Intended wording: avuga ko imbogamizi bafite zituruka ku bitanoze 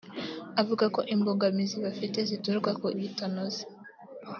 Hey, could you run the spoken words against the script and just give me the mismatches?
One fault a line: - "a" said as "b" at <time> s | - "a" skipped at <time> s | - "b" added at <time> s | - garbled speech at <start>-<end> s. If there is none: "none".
none